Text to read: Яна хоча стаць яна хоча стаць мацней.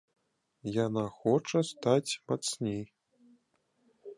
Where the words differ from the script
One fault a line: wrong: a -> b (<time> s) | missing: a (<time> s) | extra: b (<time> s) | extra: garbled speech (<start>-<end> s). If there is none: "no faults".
missing: яна хоча стаць (2.1 s)